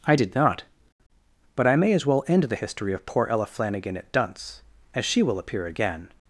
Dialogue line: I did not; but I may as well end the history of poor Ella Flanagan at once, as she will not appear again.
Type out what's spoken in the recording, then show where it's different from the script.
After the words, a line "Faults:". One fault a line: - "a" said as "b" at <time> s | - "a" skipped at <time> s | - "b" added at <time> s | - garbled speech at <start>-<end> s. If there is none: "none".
I did not; but I may as well end the history of poor Ella Flanagan at dunce, as she will appear again.
Faults:
- "once" said as "dunce" at 4.1 s
- "not" skipped at 5.4 s